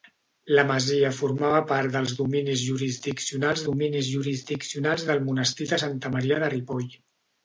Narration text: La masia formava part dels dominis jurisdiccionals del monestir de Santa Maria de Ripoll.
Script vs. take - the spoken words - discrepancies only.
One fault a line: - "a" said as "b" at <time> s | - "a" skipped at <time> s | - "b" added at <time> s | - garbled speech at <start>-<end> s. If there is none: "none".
- "dominis jurisdiccionals" added at 3.7 s